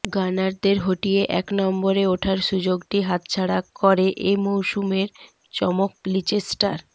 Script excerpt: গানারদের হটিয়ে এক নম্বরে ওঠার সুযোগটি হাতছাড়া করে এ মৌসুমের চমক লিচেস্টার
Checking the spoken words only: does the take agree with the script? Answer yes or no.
yes